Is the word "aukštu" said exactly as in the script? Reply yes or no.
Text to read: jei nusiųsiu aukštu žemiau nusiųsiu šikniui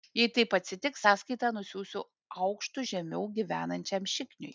yes